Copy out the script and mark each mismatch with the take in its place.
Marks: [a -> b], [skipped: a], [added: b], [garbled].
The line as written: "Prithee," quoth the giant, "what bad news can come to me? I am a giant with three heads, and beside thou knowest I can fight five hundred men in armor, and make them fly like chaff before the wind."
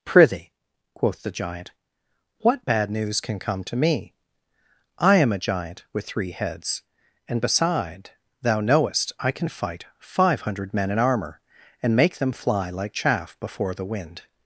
"Prithee," quoth the giant, "what bad news can come to me? I am a giant with three heads, and beside thou knowest I can fight five hundred men in armor, and make them fly like chaff before the wind."